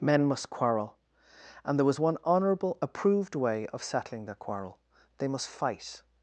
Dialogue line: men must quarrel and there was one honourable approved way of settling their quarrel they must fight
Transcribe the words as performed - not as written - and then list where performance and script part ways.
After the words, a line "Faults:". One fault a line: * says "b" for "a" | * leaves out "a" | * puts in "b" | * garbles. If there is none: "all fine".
men must quarrel and there was one honourable approved way of settling their quarrel they must fight
Faults:
all fine